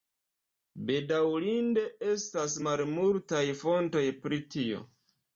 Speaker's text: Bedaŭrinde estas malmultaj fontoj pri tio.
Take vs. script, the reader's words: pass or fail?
pass